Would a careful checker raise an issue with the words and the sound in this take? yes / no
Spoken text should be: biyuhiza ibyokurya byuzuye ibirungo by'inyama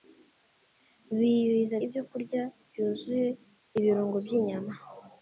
no